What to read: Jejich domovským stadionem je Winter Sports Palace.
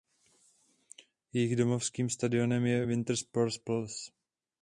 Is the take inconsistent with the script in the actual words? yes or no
no